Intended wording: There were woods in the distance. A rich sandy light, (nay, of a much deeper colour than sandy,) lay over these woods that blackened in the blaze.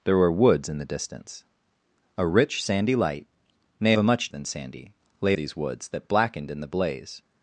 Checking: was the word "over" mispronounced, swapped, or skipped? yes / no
yes